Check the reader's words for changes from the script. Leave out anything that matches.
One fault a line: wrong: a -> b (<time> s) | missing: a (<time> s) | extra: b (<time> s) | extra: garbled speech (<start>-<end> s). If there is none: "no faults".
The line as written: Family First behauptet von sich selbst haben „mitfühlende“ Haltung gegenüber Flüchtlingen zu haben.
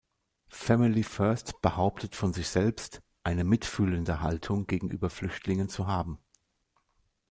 wrong: haben -> eine (3.2 s)